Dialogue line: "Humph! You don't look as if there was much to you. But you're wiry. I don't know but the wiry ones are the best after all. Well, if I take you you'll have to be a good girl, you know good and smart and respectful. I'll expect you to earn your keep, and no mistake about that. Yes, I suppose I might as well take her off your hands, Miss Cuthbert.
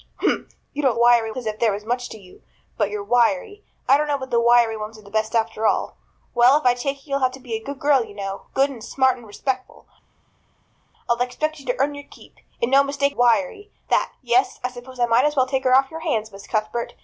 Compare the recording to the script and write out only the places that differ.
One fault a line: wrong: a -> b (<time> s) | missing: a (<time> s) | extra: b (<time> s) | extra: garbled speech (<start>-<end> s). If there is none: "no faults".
wrong: look -> wiry (0.9 s)
wrong: about -> wiry (13.1 s)